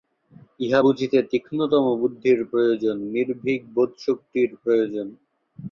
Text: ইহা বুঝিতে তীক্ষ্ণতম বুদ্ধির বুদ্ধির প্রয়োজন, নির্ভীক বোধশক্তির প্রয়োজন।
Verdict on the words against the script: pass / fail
fail